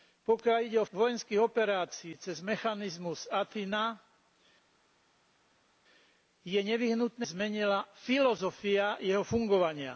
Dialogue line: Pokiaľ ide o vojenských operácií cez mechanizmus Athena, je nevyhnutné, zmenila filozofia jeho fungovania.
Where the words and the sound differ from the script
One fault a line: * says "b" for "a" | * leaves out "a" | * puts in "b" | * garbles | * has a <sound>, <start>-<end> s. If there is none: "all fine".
all fine